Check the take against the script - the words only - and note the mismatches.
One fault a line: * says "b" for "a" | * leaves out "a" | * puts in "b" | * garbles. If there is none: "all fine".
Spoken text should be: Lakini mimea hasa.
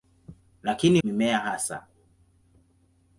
all fine